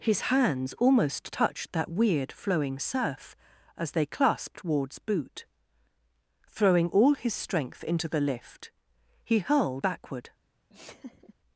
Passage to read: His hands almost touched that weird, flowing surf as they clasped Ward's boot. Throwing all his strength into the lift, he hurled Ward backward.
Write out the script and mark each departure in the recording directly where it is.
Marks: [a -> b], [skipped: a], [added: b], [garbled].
His hands almost touched that weird, flowing surf as they clasped Ward's boot. Throwing all his strength into the lift, he hurled [skipped: Ward] backward.